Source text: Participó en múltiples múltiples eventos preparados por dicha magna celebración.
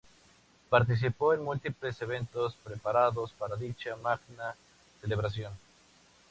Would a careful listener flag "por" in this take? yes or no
yes